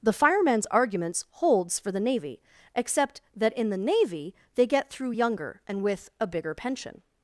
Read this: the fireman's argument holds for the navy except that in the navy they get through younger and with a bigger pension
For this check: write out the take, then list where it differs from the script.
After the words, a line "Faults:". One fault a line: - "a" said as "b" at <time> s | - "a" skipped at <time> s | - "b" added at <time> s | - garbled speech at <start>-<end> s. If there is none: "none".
the fireman's arguments holds for the navy except that in the navy they get through younger and with a bigger pension
Faults:
- "argument" said as "arguments" at 0.7 s